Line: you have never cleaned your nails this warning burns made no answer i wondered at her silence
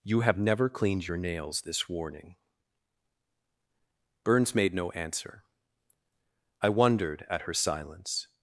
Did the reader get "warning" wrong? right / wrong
right